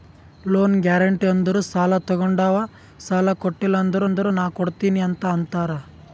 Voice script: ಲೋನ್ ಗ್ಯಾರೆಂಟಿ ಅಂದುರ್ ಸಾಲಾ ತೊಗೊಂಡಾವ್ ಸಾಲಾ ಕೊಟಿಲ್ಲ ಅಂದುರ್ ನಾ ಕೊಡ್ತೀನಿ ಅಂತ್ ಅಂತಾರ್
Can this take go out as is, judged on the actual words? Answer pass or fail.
fail